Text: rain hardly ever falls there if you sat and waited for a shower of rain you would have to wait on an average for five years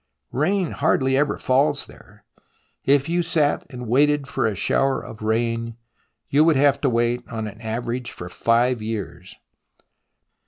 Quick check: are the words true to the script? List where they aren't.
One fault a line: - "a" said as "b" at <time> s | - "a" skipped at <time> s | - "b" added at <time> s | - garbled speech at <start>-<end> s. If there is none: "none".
none